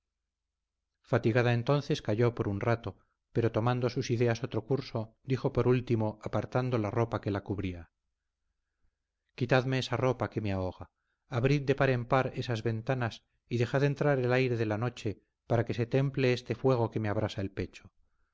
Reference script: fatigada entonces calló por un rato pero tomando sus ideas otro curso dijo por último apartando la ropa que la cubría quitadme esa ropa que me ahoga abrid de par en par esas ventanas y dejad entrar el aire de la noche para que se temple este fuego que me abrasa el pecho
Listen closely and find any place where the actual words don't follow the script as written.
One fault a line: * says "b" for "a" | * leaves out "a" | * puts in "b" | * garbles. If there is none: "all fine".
all fine